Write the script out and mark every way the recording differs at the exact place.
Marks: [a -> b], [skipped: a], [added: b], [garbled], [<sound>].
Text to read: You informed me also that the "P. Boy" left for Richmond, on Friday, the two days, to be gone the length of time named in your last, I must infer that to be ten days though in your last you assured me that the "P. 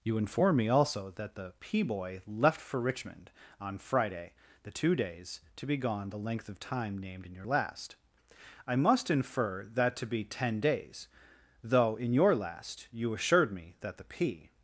You [informed -> inform] me also that the "P. Boy" left for Richmond, on Friday, the two days, to be gone the length of time named in your last, I must infer that to be ten days though in your last you assured me that the "P.